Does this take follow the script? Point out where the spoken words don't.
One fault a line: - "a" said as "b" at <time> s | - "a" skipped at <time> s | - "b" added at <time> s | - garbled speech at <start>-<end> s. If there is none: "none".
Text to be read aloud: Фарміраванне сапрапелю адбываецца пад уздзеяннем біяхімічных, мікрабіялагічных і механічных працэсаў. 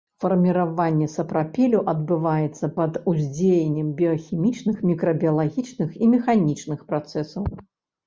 none